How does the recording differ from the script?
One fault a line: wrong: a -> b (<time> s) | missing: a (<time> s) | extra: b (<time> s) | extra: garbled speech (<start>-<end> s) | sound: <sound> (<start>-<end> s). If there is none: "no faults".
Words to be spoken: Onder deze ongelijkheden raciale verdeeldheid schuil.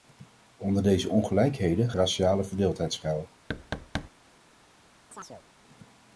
sound: thud (3.5-4.1 s)
sound: chirp (5.1-5.4 s)